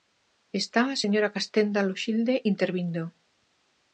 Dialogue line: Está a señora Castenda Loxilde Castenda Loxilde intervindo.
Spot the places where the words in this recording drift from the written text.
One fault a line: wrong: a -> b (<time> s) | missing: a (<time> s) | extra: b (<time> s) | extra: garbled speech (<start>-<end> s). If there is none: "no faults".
missing: Castenda Loxilde (2.3 s)